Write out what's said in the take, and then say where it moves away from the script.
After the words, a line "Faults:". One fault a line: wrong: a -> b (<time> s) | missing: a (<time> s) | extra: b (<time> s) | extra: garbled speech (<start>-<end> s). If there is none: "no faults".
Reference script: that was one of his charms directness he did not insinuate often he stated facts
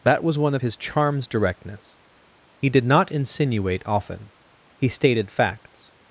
that was one of his charms directness he did not insinuate often he stated facts
Faults:
no faults